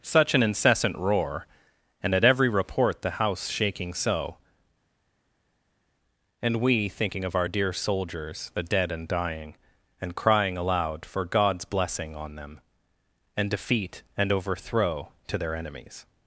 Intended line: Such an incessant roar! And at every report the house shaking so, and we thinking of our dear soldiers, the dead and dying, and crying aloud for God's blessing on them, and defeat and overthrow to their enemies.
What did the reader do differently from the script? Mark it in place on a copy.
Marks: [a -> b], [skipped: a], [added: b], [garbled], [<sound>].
Such an incessant roar! And at every report the house shaking so, and we thinking of our dear soldiers, the dead and dying, and crying aloud for God's blessing on them, and defeat and overthrow to their enemies.